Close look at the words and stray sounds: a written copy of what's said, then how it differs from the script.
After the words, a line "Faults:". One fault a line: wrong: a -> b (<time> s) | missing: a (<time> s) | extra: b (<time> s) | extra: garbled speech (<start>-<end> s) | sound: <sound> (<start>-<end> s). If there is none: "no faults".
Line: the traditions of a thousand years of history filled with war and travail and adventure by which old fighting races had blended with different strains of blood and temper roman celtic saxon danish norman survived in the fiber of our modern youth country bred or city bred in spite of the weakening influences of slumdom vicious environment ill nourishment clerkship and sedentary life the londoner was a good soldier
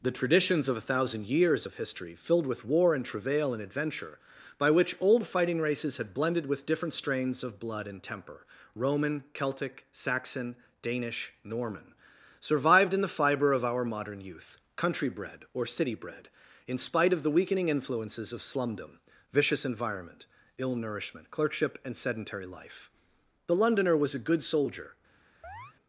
the traditions of a thousand years of history filled with war and travail and adventure by which old fighting races had blended with different strains of blood and temper roman celtic saxon danish norman survived in the fiber of our modern youth country bred or city bred in spite of the weakening influences of slumdom vicious environment ill nourishment clerkship and sedentary life the londoner was a good soldier
Faults:
sound: chirp (25.4-25.7 s)